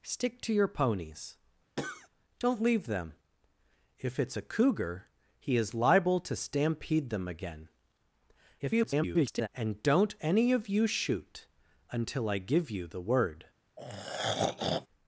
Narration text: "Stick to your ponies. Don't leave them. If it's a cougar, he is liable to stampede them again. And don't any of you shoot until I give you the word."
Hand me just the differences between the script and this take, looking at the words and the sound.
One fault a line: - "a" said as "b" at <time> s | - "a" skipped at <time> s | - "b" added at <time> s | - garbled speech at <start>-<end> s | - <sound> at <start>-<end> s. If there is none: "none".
- cough at 1.8-2.1 s
- garbled speech at 8.6-9.5 s
- throat clearing at 13.8-14.9 s